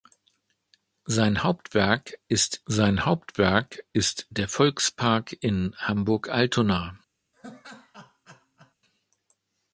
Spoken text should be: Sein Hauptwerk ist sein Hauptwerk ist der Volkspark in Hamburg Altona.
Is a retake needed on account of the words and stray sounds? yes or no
yes